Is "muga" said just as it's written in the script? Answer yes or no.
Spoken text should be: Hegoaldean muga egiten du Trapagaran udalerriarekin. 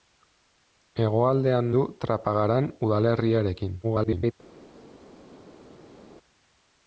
no